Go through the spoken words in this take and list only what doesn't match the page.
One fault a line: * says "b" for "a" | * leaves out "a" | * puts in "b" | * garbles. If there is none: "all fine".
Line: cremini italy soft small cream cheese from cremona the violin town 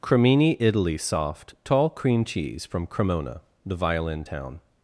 * says "tall" for "small"